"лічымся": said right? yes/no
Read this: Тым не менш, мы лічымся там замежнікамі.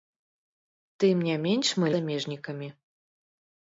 no